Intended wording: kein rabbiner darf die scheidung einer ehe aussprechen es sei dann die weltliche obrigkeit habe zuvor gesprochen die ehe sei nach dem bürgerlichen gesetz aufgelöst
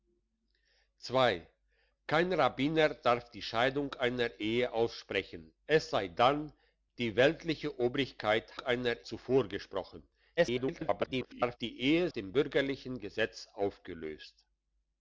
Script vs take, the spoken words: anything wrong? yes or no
yes